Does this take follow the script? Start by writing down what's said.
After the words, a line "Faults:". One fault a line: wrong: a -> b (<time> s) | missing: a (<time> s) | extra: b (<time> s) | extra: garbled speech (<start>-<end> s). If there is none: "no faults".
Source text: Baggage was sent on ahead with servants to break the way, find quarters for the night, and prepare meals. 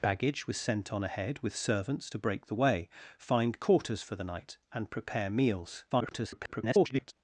Baggage was sent on ahead with servants to break the way, find quarters for the night, and prepare meals. [garbled]
Faults:
extra: garbled speech (5.9-7.1 s)